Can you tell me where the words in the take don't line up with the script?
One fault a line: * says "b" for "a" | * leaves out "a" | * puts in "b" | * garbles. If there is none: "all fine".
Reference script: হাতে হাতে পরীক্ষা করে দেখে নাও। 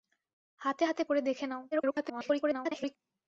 * leaves out "পরীক্ষা"
* garbles